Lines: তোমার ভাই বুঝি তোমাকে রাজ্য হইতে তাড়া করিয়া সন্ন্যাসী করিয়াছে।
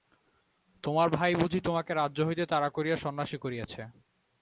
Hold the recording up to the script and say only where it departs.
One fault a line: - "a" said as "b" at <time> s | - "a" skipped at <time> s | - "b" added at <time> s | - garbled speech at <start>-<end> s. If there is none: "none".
none